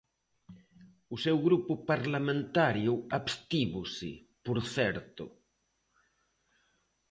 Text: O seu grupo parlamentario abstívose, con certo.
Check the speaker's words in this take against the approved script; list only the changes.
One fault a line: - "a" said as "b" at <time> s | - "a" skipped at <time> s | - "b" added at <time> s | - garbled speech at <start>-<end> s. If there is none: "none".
- "con" said as "por" at 4.5 s